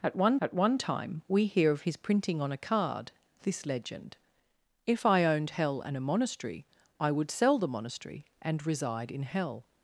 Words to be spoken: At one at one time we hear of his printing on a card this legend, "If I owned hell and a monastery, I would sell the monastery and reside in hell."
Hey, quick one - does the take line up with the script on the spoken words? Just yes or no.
yes